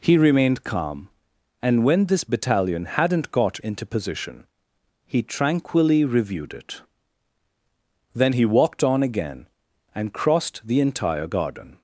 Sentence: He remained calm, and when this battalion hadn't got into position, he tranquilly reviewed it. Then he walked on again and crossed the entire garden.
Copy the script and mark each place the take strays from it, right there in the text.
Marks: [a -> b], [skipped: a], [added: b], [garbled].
He remained calm, and when this battalion hadn't got into position, he tranquilly reviewed it. Then he walked on again and crossed the entire garden.